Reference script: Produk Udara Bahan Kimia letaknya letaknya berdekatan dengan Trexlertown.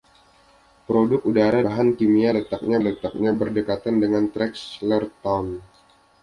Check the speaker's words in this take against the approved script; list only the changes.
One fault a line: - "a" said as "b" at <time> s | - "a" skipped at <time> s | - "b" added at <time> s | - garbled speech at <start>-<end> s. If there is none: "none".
none